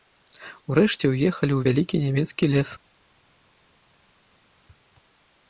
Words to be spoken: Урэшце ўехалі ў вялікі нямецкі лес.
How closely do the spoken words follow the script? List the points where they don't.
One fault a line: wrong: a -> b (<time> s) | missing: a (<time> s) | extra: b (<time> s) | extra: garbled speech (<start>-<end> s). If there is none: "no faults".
no faults